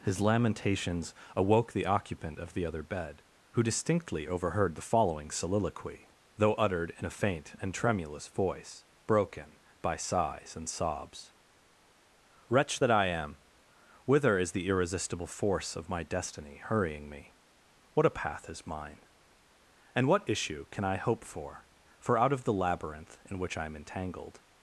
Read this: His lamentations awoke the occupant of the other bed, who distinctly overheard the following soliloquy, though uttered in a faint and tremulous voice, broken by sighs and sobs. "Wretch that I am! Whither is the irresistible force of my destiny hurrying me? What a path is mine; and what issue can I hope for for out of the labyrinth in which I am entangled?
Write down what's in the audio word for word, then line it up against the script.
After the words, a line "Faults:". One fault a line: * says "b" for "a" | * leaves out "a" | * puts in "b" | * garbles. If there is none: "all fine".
His lamentations awoke the occupant of the other bed, who distinctly overheard the following soliloquy, though uttered in a faint and tremulous voice, broken by sighs and sobs. "Wretch that I am! Whither is the irresistible force of my destiny hurrying me? What a path is mine; and what issue can I hope for for out of the labyrinth in which I am entangled?
Faults:
all fine